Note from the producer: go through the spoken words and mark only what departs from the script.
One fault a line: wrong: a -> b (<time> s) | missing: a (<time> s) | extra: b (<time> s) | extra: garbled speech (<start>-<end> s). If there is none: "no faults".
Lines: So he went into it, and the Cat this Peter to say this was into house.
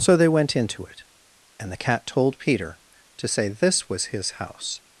wrong: he -> they (0.2 s)
wrong: this -> told (2.1 s)
wrong: into -> his (4.0 s)